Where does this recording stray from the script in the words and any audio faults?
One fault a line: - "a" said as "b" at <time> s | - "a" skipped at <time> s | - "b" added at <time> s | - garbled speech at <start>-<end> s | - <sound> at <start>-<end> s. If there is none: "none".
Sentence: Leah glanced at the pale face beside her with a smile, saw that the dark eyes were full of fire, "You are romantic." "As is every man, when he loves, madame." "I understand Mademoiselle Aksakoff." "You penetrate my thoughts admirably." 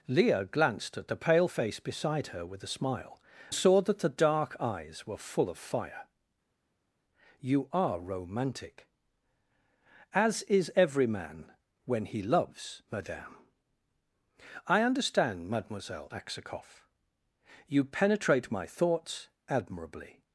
none